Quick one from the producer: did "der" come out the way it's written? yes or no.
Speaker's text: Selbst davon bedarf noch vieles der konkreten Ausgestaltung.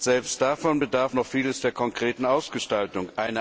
yes